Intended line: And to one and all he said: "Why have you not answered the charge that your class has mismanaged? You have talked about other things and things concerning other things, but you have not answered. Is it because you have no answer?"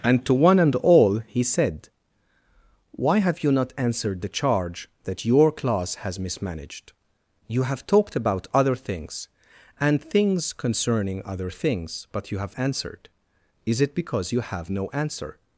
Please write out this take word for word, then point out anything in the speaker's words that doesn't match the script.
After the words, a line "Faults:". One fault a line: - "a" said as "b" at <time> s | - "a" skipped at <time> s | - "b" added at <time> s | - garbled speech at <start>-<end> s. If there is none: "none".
And to one and all he said: "Why have you not answered the charge that your class has mismanaged? You have talked about other things and things concerning other things, but you have answered. Is it because you have no answer?"
Faults:
- "not" skipped at 12.5 s